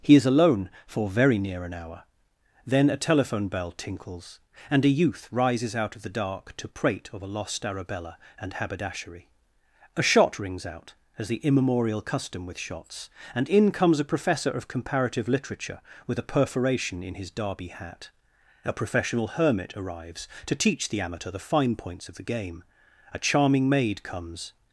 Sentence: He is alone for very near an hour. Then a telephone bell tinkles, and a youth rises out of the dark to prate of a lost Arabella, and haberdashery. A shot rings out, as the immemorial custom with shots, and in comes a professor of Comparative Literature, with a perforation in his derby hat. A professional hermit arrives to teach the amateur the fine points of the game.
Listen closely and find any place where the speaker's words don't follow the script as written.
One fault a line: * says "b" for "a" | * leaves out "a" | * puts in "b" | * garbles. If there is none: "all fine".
* puts in "A charming maid comes"